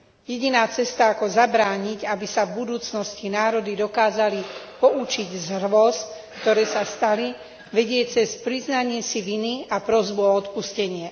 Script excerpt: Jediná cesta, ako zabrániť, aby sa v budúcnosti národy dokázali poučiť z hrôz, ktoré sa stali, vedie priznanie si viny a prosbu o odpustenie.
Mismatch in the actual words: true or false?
true